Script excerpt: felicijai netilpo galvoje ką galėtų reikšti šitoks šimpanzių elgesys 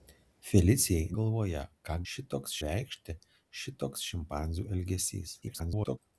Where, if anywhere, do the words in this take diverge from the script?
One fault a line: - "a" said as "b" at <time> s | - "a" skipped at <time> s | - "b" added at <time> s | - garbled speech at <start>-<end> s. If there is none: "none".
- "netilpo" skipped at 1.1 s
- "galėtų" said as "šitoks" at 2.1 s
- garbled speech at 5.4-6.0 s